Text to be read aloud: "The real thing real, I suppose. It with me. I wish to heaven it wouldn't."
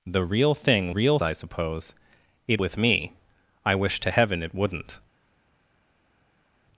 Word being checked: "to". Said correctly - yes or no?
yes